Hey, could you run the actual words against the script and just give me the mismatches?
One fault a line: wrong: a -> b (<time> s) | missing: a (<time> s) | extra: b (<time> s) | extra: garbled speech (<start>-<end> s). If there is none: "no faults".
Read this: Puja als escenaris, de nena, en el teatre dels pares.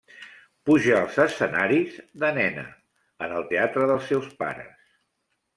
extra: seus (4.1 s)